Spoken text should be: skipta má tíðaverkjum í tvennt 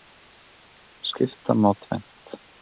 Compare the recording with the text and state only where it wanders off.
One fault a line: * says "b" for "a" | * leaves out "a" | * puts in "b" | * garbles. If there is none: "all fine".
* leaves out "tíðaverkjum"